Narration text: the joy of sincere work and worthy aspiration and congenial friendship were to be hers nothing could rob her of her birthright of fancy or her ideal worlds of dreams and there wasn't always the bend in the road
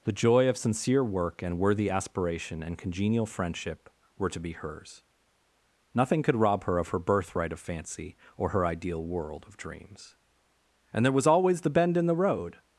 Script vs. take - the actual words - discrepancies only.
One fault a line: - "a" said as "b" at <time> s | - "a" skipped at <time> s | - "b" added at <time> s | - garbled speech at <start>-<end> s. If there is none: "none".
- "worlds" said as "world" at 9.0 s
- "wasn't" said as "was" at 11.1 s